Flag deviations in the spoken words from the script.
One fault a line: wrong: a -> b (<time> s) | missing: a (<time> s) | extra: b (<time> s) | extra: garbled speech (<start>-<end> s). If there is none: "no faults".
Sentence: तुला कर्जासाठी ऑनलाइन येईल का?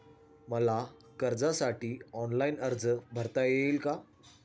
wrong: तुला -> मला (0.5 s)
extra: अर्ज भरता (2.6 s)